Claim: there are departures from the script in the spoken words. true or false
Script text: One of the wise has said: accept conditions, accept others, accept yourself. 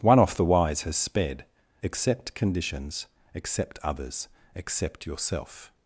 true